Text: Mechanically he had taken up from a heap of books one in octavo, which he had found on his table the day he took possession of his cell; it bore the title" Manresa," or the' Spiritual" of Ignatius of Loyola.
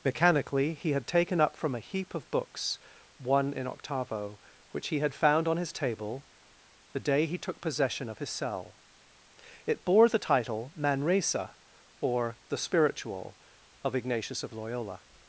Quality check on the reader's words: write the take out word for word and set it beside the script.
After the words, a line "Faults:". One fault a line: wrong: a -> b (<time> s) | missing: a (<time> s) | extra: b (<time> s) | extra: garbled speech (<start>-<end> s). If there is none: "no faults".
Mechanically he had taken up from a heap of books one in octavo, which he had found on his table the day he took possession of his cell; it bore the title" Manresa," or the' Spiritual" of Ignatius of Loyola.
Faults:
no faults